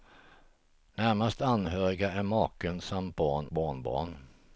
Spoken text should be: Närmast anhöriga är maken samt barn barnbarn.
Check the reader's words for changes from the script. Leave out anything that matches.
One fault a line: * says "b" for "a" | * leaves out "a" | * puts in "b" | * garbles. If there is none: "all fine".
all fine